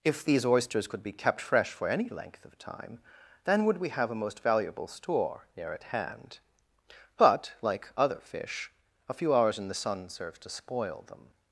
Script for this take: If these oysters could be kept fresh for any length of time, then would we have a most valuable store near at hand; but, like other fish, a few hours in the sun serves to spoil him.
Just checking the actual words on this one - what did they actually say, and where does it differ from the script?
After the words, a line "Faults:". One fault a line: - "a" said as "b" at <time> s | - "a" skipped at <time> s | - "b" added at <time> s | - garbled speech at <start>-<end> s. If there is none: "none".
If these oysters could be kept fresh for any length of time, then would we have a most valuable store near at hand; but, like other fish, a few hours in the sun serves to spoil them.
Faults:
- "him" said as "them" at 11.1 s